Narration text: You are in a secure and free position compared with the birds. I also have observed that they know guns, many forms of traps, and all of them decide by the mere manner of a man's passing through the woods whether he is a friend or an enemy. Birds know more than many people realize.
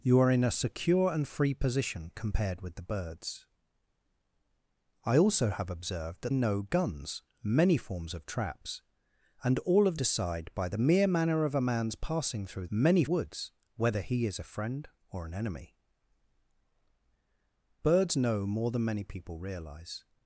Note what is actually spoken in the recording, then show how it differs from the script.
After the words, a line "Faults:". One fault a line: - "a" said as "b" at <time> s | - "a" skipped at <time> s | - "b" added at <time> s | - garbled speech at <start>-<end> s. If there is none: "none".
You are in a secure and free position compared with the birds. I also have observed that know guns, many forms of traps, and all of decide by the mere manner of a man's passing through many woods whether he is a friend or an enemy. Birds know more than many people realize.
Faults:
- "they" skipped at 6.3 s
- "them" skipped at 10.0 s
- "the" said as "many" at 12.7 s